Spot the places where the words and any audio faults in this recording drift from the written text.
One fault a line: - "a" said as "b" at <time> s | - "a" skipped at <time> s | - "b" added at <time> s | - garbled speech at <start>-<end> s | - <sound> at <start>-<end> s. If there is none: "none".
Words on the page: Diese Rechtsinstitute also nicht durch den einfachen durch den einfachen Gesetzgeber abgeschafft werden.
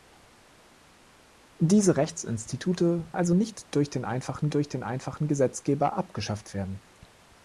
none